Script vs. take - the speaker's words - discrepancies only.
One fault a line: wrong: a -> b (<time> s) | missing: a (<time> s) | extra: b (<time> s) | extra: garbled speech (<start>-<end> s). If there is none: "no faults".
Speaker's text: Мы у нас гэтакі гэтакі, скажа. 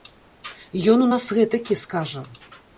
wrong: Мы -> Ён (0.9 s)
missing: гэтакі (1.8 s)